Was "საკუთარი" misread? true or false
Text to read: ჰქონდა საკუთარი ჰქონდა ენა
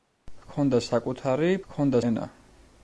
false